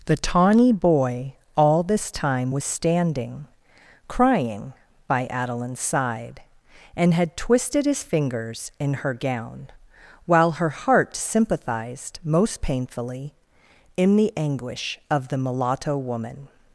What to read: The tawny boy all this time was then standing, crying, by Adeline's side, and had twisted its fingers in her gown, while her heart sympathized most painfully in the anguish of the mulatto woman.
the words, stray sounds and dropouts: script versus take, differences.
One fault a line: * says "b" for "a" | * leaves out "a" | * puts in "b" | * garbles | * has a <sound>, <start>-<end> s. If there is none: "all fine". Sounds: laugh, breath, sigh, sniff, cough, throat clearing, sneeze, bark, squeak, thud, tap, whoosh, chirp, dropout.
* leaves out "then"
* says "his" for "its"